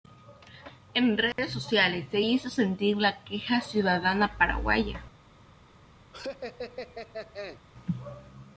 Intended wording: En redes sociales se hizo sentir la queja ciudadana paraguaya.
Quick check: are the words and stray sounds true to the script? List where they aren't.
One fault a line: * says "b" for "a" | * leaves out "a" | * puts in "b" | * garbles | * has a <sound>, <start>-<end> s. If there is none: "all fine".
* has a dropout, 1.3-1.4 s
* has a laugh, 6.1-7.6 s